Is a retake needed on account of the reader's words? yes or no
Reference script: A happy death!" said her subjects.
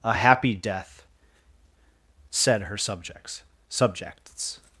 yes